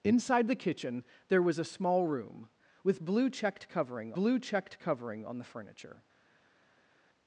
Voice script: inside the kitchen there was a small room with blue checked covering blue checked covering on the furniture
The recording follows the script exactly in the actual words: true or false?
true